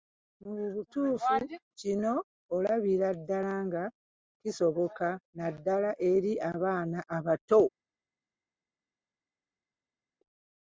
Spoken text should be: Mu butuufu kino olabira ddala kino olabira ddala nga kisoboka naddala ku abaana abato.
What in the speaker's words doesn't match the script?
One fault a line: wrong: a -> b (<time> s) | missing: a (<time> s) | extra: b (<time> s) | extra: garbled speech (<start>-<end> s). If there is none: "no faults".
missing: kino olabira ddala (3.5 s)
wrong: ku -> eri (6.1 s)